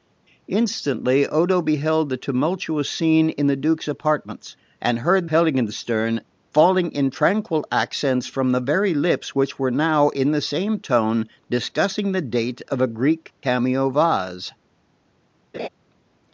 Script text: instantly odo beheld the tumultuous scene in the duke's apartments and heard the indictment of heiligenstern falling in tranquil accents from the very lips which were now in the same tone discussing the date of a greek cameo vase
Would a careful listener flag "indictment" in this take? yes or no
yes